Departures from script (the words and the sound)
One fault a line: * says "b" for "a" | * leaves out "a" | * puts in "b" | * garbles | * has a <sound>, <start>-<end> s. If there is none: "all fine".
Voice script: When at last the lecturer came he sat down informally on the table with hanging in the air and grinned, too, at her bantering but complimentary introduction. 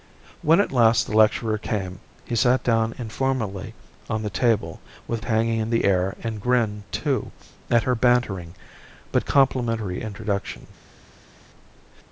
all fine